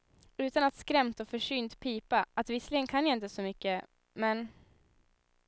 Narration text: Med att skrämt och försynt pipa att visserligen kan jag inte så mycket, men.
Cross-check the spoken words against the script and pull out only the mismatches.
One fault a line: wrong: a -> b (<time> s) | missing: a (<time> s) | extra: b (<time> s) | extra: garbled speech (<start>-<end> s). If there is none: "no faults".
wrong: Med -> Utan (0.4 s)